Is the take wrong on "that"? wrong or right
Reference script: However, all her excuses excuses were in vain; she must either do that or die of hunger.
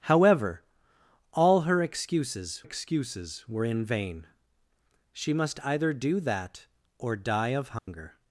right